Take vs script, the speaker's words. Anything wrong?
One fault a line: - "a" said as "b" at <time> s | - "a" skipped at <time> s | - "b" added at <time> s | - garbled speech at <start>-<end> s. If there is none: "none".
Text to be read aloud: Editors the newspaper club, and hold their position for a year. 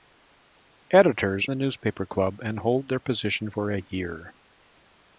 none